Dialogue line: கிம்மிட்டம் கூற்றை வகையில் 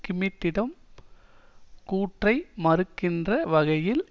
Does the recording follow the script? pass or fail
fail